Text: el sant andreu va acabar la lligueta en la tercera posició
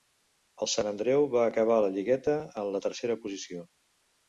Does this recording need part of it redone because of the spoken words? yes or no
no